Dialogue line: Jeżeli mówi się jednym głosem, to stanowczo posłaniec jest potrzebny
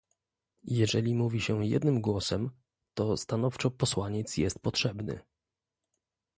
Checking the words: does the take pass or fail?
pass